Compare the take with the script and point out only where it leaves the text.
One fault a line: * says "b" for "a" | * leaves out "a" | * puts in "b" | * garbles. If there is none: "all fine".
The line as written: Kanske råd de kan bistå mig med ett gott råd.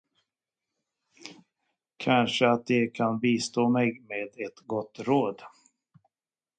* says "att" for "råd"